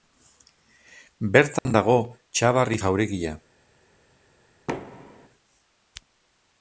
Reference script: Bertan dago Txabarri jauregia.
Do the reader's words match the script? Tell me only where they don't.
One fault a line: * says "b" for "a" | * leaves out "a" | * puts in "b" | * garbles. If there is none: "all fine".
all fine